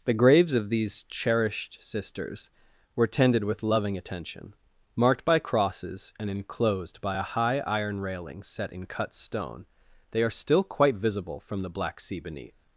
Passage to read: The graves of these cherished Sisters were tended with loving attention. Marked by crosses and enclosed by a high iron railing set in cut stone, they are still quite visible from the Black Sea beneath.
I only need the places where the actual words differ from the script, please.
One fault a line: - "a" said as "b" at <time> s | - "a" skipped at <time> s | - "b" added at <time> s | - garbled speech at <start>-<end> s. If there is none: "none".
none